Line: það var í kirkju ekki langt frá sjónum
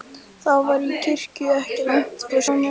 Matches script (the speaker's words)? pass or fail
pass